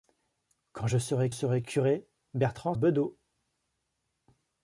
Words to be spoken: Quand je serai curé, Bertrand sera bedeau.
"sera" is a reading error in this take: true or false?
true